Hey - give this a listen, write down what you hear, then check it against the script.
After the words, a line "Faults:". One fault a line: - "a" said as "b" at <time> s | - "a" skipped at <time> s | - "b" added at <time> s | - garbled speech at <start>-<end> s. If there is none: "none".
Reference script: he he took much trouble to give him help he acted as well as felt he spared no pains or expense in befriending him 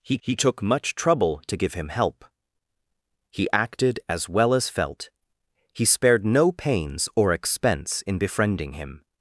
he he took much trouble to give him help he acted as well as felt he spared no pains or expense in befriending him
Faults:
none